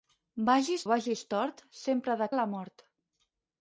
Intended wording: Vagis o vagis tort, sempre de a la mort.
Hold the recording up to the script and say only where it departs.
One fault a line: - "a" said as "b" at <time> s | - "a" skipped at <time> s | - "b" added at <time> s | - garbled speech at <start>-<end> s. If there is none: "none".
none